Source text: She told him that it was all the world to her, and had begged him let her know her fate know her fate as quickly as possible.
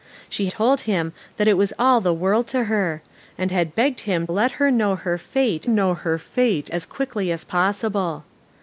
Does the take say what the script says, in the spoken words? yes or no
yes